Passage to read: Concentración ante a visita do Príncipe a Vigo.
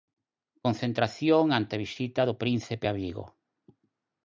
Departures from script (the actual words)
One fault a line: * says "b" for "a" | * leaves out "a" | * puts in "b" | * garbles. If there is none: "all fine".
all fine